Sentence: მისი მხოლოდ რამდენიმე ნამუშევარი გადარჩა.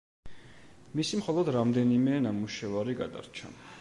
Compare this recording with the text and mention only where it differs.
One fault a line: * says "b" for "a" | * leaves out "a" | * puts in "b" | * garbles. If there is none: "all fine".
all fine